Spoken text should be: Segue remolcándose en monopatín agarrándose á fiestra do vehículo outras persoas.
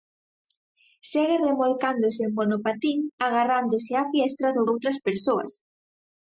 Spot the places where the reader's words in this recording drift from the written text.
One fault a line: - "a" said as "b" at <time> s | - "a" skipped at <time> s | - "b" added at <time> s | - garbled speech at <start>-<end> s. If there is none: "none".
- "vehículo" skipped at 4.6 s